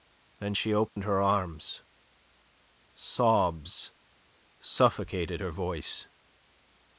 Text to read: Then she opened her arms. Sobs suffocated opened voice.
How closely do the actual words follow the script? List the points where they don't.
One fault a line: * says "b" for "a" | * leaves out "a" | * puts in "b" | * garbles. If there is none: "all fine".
* says "her" for "opened"